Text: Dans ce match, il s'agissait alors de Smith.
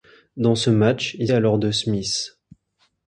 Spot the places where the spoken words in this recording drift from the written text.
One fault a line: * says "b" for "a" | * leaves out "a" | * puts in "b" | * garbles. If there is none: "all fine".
* leaves out "s'agissait"